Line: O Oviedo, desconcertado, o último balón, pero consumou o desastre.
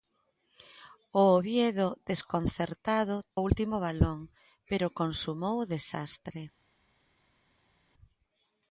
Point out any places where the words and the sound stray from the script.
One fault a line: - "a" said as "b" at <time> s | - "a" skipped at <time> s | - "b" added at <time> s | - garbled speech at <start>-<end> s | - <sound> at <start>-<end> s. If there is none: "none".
none